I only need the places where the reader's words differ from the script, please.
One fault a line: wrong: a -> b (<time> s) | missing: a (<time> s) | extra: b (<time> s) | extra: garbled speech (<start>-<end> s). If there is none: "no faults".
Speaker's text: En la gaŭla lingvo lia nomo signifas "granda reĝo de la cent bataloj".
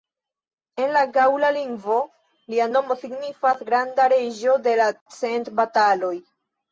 no faults